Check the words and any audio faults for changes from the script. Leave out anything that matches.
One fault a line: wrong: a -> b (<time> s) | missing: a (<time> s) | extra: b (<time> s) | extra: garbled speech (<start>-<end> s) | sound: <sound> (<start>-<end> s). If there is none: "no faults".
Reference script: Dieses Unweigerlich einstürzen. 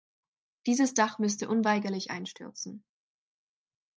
extra: Dach müsste (0.9 s)